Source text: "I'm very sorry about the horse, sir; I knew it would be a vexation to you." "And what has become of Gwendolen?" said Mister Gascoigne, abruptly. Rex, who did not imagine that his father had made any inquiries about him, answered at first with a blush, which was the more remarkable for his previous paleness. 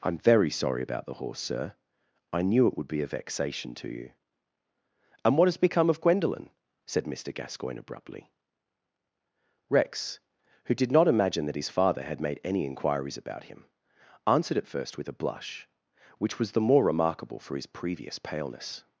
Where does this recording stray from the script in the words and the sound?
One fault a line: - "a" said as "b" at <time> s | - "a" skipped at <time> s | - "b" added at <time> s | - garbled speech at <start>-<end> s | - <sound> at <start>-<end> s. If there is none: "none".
none